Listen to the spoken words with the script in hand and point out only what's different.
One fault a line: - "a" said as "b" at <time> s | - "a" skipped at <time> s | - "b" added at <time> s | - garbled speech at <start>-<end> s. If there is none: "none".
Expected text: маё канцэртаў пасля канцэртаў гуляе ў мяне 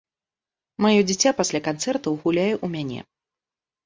- "канцэртаў" said as "дзіця" at 1.1 s